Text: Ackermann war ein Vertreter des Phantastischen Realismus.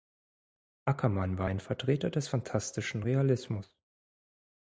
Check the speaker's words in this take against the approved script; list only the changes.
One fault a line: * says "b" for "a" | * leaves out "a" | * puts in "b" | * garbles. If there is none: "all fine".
all fine